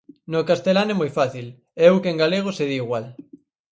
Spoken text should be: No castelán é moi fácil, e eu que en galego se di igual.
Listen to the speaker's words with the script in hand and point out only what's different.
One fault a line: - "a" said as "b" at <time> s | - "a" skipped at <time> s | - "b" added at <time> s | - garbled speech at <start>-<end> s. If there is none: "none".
none